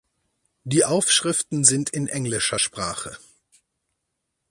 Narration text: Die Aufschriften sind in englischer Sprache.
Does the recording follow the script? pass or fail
pass